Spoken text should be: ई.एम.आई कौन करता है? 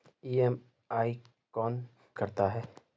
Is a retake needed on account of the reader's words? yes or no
no